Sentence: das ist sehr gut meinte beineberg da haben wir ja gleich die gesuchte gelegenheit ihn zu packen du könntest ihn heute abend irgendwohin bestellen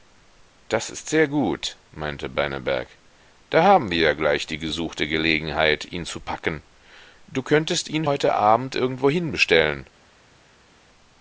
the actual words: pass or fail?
pass